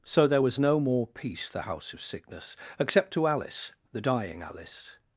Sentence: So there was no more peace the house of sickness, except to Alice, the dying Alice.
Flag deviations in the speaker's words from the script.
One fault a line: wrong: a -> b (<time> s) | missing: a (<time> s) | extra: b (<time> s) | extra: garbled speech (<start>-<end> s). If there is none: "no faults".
no faults